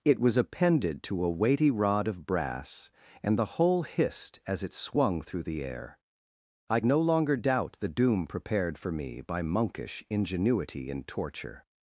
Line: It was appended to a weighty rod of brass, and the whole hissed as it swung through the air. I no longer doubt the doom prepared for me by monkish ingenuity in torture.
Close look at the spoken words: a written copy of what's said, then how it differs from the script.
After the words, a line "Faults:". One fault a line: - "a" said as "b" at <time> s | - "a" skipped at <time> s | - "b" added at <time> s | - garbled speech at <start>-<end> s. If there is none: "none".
It was appended to a weighty rod of brass, and the whole hissed as it swung through the air. I no longer doubt the doom prepared for me by monkish ingenuity in torture.
Faults:
none